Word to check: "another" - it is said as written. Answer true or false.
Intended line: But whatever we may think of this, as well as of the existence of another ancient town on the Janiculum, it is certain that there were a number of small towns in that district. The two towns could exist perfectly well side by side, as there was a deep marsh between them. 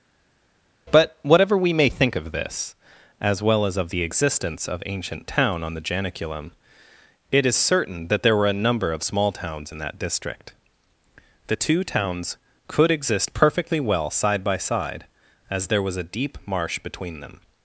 false